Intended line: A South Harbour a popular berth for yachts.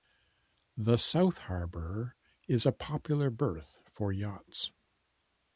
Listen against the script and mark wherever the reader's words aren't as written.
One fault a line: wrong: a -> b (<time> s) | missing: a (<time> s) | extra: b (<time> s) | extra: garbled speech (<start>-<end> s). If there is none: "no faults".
wrong: A -> The (0.8 s)
extra: is (2.5 s)